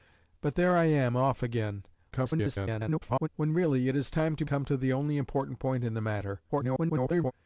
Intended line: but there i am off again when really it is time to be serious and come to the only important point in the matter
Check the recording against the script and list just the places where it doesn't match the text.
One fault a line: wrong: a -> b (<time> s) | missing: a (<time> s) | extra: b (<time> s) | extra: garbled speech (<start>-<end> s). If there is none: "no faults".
extra: garbled speech (2.1-3.3 s)
missing: be serious and (4.5 s)
extra: garbled speech (6.5-7.3 s)